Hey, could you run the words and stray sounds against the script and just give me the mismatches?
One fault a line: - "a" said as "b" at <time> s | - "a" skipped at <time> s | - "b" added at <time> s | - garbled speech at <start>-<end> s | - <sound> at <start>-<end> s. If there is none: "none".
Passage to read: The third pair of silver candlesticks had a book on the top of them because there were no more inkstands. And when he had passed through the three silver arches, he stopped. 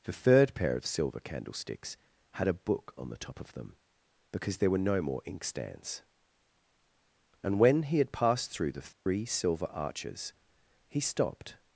- dropout at 8.9-9.1 s